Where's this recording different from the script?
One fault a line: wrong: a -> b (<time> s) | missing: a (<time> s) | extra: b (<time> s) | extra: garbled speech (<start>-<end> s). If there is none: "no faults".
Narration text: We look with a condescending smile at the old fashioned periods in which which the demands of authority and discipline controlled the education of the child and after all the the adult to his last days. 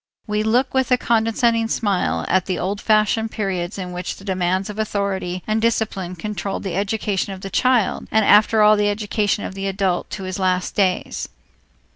missing: which (4.1 s)
extra: education of (8.9 s)